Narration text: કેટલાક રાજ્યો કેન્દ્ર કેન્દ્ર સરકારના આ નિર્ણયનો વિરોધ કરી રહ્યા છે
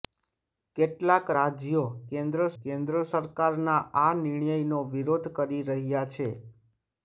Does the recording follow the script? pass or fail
pass